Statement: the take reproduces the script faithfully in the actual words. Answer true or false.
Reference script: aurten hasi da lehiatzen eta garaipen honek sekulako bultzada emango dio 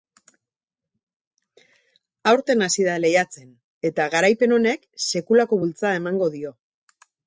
true